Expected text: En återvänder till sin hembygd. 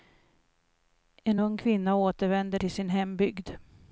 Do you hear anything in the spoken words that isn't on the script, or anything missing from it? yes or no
yes